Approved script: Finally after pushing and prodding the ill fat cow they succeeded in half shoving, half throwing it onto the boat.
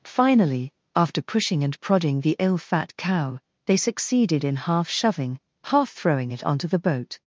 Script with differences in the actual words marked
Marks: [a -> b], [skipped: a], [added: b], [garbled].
Finally after pushing and prodding the ill fat cow they succeeded in half shoving, half throwing it onto the boat.